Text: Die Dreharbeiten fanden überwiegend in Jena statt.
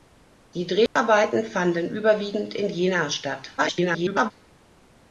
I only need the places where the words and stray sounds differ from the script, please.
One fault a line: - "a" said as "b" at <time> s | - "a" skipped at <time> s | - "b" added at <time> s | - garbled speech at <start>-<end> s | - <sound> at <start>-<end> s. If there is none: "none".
- dropout at 0.9-1.0 s
- garbled speech at 3.6-4.3 s